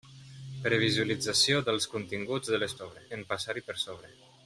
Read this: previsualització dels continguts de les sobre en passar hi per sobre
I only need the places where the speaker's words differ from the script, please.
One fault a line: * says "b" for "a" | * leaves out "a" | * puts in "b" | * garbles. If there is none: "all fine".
all fine